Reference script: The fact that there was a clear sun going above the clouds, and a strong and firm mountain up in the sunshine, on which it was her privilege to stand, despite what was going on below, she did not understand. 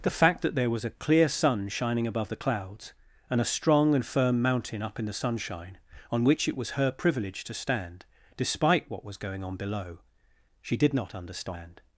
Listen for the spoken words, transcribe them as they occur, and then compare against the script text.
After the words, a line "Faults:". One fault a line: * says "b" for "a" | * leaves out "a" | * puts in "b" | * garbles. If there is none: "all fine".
The fact that there was a clear sun shining above the clouds, and a strong and firm mountain up in the sunshine, on which it was her privilege to stand, despite what was going on below, she did not understand.
Faults:
* says "shining" for "going"